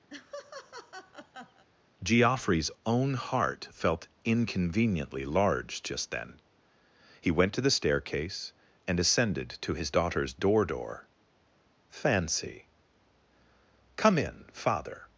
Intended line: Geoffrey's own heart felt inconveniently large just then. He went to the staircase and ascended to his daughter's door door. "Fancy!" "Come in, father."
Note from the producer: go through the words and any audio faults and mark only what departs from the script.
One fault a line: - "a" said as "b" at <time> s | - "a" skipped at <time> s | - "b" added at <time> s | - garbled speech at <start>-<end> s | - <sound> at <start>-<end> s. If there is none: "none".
- laugh at 0.1-1.7 s